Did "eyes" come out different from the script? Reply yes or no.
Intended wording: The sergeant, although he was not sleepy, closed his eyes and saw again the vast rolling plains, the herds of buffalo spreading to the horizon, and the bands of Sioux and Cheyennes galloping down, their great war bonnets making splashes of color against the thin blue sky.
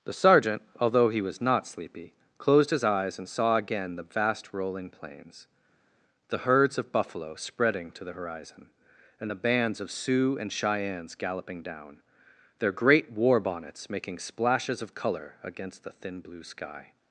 no